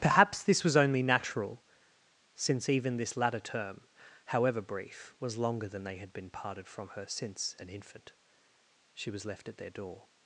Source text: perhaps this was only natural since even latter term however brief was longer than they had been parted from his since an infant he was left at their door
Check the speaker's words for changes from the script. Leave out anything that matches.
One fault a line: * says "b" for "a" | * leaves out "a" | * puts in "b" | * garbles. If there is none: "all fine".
* puts in "this"
* says "her" for "his"
* says "she" for "he"